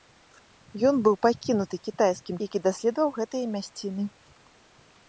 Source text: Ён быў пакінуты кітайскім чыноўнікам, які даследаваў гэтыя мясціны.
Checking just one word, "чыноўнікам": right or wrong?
wrong